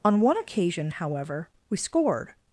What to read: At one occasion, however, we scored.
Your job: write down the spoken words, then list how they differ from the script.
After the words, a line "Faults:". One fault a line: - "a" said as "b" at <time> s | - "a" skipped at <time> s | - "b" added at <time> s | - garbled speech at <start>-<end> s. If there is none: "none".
On one occasion, however, we scored.
Faults:
- "At" said as "On" at 0.0 s